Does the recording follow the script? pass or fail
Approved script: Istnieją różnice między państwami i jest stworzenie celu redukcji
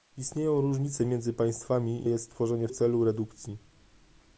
pass